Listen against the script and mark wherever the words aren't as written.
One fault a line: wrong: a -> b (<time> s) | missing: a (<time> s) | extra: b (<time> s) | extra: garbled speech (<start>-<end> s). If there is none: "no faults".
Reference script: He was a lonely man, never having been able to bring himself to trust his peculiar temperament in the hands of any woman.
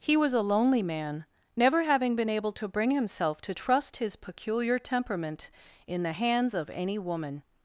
no faults